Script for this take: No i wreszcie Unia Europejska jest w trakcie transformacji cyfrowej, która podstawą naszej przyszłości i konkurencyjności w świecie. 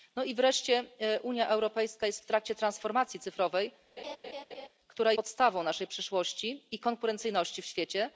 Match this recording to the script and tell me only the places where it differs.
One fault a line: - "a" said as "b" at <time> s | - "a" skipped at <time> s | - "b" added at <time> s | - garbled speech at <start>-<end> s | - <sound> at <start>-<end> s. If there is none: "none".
- laugh at 4.0-4.7 s